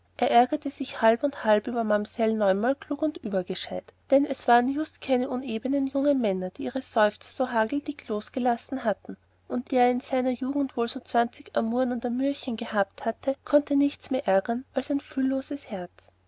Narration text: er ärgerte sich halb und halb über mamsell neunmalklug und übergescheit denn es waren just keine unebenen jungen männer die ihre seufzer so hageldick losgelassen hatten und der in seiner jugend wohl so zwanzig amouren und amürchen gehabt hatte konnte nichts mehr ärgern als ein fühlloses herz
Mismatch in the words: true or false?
false